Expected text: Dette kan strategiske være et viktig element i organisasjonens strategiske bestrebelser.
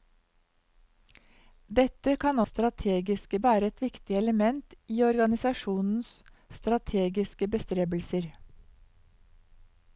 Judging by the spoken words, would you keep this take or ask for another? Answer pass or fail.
pass